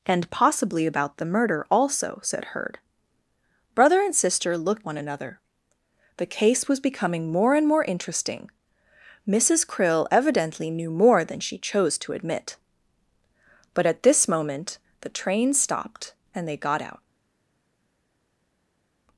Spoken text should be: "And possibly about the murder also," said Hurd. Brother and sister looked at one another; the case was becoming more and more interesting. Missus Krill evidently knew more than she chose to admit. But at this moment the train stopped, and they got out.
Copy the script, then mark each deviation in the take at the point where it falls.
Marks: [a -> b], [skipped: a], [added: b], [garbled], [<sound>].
"And possibly about the murder also," said Hurd. Brother and sister looked [skipped: at] one another; the case was becoming more and more interesting. Missus Krill evidently knew more than she chose to admit. But at this moment the train stopped, and they got out.